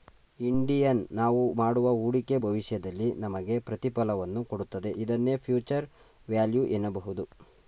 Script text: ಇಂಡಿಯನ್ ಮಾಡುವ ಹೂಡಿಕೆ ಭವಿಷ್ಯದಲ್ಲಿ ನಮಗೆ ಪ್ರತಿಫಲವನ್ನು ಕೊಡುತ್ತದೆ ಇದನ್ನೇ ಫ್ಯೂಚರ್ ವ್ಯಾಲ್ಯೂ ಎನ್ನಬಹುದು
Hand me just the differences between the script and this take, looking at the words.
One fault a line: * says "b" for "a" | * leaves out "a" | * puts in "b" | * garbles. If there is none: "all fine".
* puts in "ನಾವು"